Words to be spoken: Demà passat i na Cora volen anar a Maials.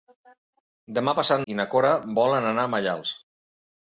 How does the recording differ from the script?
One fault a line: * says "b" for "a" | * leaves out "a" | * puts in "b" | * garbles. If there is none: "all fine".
all fine